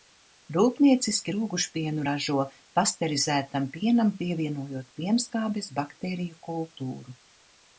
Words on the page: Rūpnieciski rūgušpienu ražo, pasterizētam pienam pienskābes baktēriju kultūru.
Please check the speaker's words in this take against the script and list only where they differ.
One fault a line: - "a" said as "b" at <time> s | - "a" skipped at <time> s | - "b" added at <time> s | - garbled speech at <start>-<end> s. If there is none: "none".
- "pievienojot" added at 4.2 s